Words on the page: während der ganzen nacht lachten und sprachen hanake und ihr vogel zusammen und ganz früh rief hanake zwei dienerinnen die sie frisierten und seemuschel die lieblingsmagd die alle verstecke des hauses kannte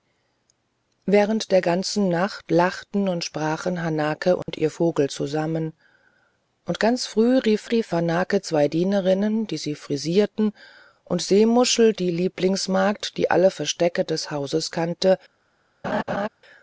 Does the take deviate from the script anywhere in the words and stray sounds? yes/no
yes